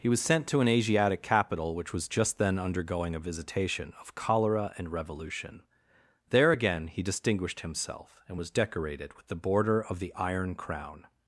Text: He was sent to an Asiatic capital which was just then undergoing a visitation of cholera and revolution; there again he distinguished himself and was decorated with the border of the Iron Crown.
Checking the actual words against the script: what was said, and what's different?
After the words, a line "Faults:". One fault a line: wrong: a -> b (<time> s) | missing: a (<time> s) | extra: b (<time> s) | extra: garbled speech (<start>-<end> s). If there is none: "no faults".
He was sent to an Asiatic capital which was just then undergoing a visitation of cholera and revolution; there again he distinguished himself and was decorated with the border of the Iron Crown.
Faults:
no faults